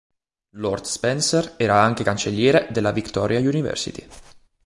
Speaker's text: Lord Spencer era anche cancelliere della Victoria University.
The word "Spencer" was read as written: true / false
true